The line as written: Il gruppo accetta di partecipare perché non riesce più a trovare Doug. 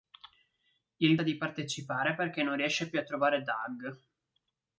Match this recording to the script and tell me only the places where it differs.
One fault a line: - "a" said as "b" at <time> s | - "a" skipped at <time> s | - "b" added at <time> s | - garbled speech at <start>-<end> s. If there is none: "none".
- "gruppo accetta" skipped at 1.1 s